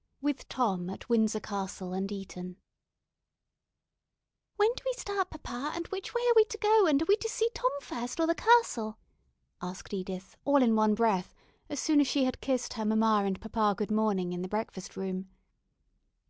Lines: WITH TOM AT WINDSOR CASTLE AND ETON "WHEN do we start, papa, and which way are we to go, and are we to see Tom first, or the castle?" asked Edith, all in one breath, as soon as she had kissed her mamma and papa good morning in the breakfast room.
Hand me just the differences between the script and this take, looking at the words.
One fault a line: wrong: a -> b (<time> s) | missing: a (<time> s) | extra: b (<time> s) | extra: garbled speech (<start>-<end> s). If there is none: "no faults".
no faults